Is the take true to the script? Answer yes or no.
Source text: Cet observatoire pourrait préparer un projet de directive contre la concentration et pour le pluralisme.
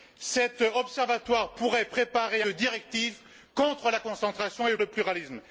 no